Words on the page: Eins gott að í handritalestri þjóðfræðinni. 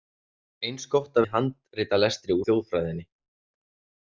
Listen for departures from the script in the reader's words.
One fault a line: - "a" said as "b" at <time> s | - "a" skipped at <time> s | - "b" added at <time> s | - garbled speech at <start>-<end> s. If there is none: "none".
none